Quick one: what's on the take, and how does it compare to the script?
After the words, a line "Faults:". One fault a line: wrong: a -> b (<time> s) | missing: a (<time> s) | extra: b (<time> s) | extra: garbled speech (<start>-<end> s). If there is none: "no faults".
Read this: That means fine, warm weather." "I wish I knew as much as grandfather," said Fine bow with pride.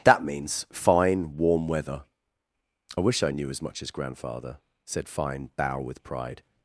That means fine, warm weather." "I wish I knew as much as grandfather," said Fine bow with pride.
Faults:
no faults